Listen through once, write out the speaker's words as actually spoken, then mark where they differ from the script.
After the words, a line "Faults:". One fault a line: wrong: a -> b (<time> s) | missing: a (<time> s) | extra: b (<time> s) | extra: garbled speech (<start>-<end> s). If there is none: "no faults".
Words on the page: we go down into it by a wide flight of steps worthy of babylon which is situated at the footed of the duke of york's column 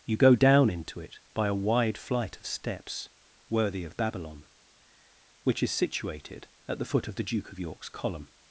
you go down into it by a wide flight of steps worthy of babylon which is situated at the foot of the duke of york's column
Faults:
wrong: we -> you (0.1 s)
wrong: footed -> foot (6.8 s)